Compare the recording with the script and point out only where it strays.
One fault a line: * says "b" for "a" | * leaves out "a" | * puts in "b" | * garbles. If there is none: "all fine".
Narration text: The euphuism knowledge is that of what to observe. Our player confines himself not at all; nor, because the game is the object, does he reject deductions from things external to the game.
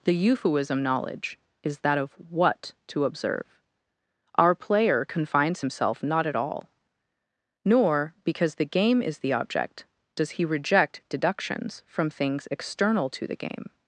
all fine